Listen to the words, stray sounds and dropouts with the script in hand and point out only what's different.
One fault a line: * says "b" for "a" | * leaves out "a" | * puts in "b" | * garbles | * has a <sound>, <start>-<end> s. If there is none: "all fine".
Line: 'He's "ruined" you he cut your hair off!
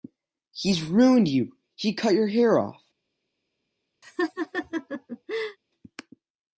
* has a laugh, 4.0-5.6 s